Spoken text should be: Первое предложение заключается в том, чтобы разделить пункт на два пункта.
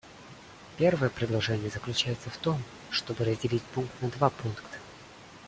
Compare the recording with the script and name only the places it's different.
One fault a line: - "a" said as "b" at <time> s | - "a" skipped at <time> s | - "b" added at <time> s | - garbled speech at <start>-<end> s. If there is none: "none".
none